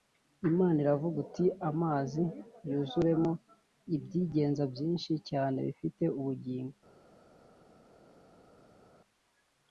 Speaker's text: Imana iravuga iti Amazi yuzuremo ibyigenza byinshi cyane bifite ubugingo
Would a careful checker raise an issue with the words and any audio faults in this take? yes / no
no